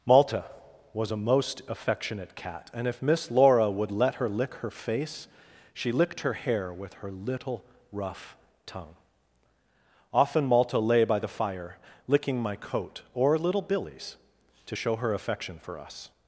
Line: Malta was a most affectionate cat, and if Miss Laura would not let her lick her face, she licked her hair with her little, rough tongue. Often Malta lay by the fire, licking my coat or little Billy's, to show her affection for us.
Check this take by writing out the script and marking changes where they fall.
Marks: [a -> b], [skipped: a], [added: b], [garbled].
Malta was a most affectionate cat, and if Miss Laura would [skipped: not] let her lick her face, she licked her hair with her little, rough tongue. Often Malta lay by the fire, licking my coat or little Billy's, to show her affection for us.